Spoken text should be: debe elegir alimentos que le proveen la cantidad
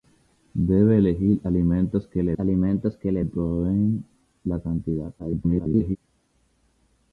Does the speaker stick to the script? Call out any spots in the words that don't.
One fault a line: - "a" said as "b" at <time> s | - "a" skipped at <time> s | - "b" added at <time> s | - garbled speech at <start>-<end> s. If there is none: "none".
- "alimentos que le" added at 2.4 s
- garbled speech at 5.2-6.0 s